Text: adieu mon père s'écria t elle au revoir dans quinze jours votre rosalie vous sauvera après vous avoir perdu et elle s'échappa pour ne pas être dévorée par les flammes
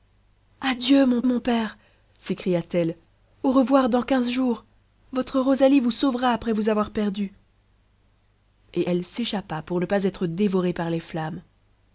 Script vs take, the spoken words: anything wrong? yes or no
yes